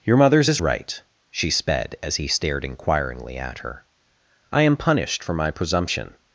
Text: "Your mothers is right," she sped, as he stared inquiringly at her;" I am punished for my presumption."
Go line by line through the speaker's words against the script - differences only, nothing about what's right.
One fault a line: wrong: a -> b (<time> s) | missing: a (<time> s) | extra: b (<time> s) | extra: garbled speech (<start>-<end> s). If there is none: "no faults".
no faults